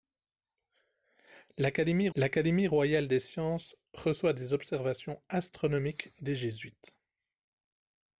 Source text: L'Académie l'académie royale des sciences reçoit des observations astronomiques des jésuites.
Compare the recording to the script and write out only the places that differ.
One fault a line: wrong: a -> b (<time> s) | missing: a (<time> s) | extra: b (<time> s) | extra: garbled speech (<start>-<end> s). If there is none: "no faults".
no faults